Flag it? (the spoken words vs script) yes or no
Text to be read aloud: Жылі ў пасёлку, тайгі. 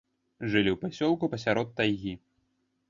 yes